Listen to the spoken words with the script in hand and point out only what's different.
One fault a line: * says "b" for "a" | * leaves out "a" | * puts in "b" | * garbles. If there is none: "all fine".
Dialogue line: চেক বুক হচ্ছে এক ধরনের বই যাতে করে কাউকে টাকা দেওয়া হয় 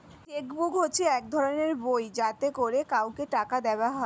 all fine